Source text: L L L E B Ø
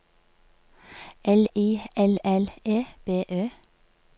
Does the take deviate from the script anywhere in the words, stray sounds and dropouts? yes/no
yes